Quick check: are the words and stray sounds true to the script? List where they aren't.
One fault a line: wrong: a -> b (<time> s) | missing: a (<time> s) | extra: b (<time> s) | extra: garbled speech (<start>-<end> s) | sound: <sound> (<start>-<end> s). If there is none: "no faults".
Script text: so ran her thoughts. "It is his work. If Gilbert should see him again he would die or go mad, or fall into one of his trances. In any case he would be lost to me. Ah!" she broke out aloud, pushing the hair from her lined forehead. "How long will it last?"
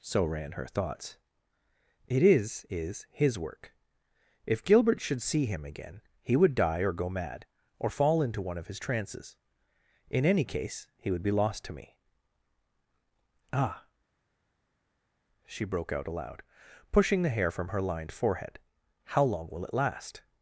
extra: is (2.7 s)